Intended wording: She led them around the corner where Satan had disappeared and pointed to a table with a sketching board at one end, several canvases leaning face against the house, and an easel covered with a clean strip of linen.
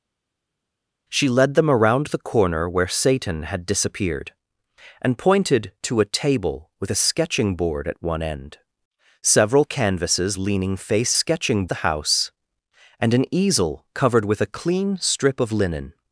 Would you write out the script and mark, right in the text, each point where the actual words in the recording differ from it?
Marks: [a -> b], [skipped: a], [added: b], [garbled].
She led them around the corner where Satan had disappeared and pointed to a table with a sketching board at one end, several canvases leaning face [against -> sketching] the house, and an easel covered with a clean strip of linen.